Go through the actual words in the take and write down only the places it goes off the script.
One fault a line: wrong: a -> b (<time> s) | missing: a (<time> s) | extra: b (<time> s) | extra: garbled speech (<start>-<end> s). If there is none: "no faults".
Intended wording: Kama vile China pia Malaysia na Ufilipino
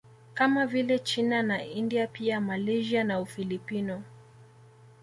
extra: na India (1.4 s)